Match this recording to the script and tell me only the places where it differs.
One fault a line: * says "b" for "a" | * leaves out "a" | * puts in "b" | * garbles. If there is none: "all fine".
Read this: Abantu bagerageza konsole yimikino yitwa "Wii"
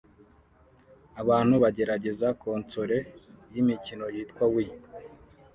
all fine